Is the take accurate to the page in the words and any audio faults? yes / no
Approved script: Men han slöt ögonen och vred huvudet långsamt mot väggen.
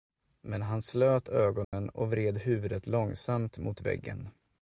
no